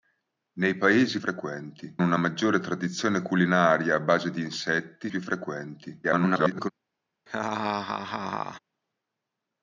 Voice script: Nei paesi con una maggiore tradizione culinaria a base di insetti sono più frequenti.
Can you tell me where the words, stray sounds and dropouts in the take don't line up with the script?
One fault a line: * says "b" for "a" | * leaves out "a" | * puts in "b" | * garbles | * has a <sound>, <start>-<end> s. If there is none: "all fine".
* says "frequenti" for "con"
* leaves out "sono"
* garbles
* has a laugh, 7.3-8.6 s